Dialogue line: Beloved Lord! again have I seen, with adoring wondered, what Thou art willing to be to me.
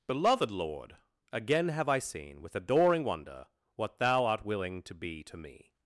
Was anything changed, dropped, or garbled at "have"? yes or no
no